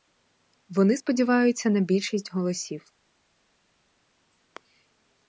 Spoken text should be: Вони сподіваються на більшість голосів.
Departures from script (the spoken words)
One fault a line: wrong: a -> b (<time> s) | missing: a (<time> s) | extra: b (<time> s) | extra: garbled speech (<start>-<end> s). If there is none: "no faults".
no faults